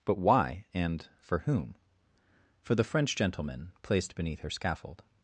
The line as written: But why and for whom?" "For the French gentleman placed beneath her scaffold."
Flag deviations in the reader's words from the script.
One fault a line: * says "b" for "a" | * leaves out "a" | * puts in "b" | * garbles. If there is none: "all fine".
all fine